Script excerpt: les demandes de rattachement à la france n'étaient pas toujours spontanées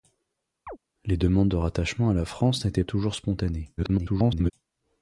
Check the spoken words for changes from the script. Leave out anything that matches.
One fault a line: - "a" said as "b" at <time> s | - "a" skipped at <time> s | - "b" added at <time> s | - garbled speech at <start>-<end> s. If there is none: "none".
- "pas" skipped at 2.8 s
- garbled speech at 3.8-4.5 s